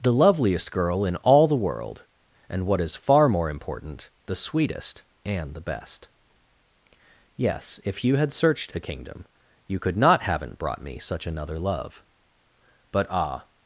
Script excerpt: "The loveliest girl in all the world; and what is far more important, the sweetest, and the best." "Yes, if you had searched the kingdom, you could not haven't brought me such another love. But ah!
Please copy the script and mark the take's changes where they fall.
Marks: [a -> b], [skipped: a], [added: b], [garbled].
"The loveliest girl in all the world; and what is far more important, the sweetest, and the best." "Yes, if you had searched the kingdom, you could not haven't brought me such another love. But ah!